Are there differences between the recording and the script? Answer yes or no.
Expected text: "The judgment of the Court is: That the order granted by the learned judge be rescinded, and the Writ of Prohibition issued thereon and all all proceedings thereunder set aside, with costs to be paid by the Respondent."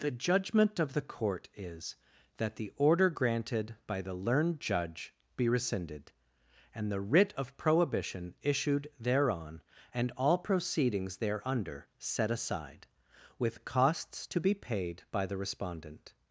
yes